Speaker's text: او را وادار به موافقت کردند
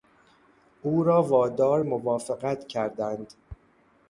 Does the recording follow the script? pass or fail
fail